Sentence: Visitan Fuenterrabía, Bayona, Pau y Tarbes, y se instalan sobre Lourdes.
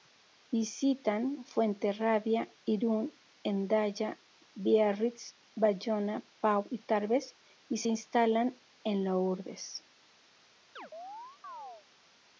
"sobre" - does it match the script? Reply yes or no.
no